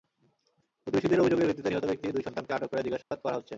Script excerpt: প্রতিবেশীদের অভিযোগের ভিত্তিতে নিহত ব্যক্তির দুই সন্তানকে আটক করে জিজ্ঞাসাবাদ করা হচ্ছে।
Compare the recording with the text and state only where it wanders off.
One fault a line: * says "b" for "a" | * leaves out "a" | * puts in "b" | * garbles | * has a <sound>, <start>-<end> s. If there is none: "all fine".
* has a dropout, 3.0-3.1 s